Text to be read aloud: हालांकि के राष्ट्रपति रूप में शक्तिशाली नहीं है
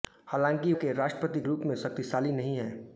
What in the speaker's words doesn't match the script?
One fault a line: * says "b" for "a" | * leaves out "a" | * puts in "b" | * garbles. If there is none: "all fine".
all fine